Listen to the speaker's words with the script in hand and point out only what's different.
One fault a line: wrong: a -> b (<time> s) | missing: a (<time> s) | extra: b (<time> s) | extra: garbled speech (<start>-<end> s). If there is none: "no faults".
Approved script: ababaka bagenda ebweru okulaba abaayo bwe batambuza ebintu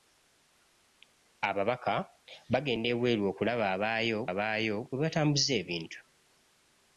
extra: abaayo (4.3 s)